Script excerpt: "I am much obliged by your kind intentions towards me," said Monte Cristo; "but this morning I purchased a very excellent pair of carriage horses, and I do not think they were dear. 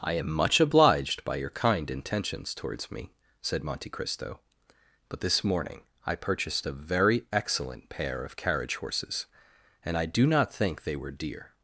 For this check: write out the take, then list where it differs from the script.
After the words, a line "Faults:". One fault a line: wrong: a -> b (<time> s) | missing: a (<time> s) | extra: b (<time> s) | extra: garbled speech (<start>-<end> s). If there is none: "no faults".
"I am much obliged by your kind intentions towards me," said Monte Cristo; "but this morning I purchased a very excellent pair of carriage horses, and I do not think they were dear.
Faults:
no faults